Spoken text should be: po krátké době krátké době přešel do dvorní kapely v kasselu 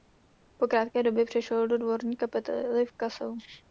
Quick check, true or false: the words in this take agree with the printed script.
false